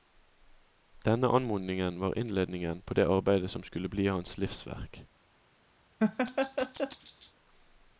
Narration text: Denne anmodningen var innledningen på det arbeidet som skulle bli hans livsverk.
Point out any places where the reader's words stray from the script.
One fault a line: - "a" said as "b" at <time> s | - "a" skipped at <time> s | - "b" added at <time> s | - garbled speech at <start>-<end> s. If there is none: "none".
none